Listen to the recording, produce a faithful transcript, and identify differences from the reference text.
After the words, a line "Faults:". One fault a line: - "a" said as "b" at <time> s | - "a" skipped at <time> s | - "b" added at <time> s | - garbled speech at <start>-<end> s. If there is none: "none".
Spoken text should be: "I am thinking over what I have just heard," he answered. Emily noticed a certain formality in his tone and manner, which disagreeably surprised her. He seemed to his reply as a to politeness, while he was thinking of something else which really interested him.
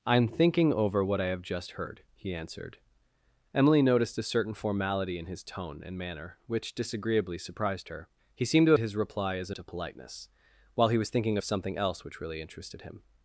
"I am thinking over what I have just heard," he answered. Emily noticed a certain formality in his tone and manner, which disagreeably surprised her. He seemed to his reply as a to politeness, while he was thinking of something else which really interested him.
Faults:
none